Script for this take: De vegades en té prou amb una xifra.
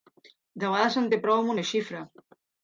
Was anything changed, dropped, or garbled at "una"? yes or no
no